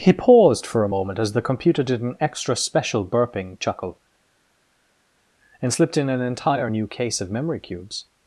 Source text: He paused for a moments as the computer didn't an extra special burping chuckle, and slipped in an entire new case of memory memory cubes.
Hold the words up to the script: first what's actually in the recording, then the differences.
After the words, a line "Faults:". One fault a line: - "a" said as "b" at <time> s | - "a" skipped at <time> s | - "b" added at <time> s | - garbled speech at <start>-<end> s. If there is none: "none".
He paused for a moment as the computer did an extra special burping chuckle, and slipped in an entire new case of memory cubes.
Faults:
- "moments" said as "moment" at 0.9 s
- "didn't" said as "did" at 1.8 s
- "memory" skipped at 7.6 s